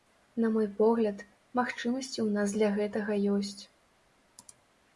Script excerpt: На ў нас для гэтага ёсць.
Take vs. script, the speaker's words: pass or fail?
fail